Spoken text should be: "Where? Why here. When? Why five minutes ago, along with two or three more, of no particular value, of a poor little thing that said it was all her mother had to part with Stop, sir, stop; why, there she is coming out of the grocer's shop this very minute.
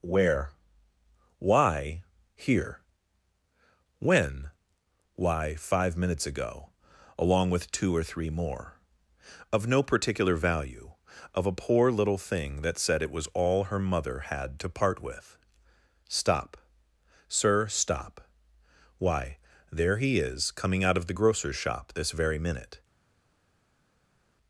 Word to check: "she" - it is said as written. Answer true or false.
false